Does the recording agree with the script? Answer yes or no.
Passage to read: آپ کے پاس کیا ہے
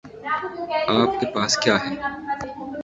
yes